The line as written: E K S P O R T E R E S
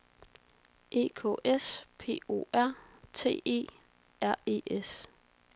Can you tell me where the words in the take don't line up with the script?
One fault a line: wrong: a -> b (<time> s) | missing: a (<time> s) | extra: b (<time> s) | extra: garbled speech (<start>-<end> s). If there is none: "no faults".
no faults